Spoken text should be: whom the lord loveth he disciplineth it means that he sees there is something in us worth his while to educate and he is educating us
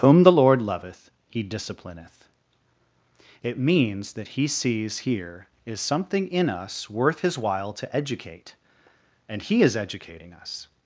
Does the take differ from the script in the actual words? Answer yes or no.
yes